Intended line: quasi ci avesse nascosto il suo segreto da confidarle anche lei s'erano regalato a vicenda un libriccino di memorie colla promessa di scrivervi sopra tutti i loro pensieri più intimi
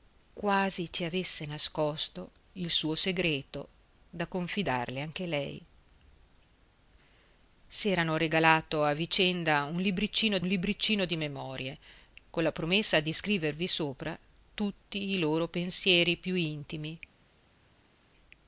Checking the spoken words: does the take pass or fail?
fail